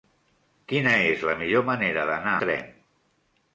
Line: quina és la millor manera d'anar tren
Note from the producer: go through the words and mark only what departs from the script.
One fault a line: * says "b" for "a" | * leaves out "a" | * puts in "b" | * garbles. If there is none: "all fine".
all fine